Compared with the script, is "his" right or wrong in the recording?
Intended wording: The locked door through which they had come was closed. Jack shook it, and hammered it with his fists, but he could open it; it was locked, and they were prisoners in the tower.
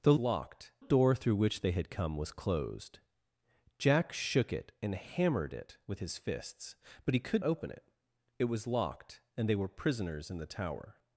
right